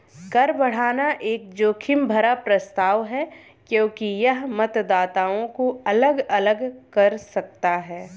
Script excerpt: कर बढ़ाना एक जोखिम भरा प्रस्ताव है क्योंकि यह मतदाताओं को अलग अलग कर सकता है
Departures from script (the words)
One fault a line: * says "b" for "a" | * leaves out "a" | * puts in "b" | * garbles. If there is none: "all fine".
all fine